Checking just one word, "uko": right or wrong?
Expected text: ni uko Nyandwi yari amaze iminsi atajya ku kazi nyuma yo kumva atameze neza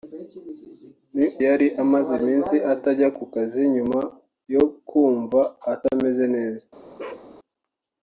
wrong